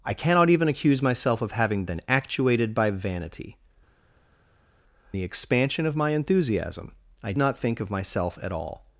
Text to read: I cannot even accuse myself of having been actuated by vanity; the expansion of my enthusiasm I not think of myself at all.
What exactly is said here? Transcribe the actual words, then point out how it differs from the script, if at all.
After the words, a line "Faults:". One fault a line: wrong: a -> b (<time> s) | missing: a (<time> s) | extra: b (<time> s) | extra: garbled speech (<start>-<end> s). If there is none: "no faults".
I cannot even accuse myself of having been actuated by vanity; the expansion of my enthusiasm I not think of myself at all.
Faults:
no faults